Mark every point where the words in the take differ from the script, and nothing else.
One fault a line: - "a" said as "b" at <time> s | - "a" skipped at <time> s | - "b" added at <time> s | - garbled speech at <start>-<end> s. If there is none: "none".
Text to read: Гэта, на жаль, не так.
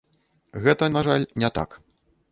none